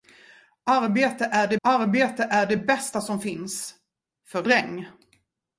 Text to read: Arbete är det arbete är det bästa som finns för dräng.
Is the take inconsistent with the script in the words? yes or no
no